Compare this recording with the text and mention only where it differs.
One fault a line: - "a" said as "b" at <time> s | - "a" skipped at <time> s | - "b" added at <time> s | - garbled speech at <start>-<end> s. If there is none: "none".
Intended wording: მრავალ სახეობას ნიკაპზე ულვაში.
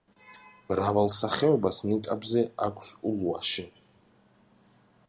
- "აქვს" added at 2.7 s